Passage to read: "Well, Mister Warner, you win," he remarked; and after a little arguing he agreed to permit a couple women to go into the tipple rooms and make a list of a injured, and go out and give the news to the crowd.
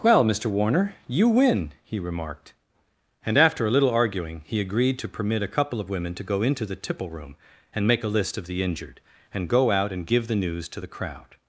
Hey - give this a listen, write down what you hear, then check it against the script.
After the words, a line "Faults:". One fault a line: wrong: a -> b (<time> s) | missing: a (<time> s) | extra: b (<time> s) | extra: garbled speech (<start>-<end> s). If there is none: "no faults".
"Well, Mister Warner, you win," he remarked; and after a little arguing he agreed to permit a couple of women to go into the tipple room and make a list of the injured, and go out and give the news to the crowd.
Faults:
extra: of (5.8 s)
wrong: rooms -> room (7.1 s)
wrong: a -> the (8.5 s)